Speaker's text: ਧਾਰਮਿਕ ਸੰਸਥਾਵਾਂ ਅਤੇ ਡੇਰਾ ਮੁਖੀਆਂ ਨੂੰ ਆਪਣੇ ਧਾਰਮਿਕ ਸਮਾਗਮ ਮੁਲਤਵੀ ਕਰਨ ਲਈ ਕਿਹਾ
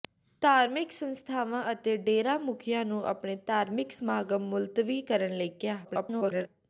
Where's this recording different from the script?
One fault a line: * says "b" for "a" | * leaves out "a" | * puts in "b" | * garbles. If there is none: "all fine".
* garbles